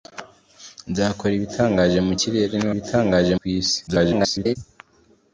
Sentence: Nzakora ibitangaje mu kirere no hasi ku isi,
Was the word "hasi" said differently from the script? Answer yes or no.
yes